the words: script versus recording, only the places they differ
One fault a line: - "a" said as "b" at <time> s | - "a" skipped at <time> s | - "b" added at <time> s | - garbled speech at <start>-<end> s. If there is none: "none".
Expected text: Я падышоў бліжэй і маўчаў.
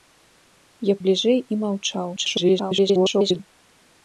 - "падышоў" skipped at 0.9 s
- garbled speech at 2.2-3.4 s